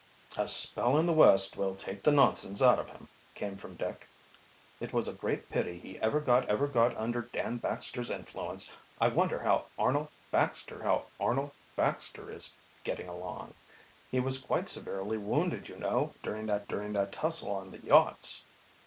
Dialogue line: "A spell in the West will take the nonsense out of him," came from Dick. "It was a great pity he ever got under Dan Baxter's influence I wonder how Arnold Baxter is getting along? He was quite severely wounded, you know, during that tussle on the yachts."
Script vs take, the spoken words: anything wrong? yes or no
yes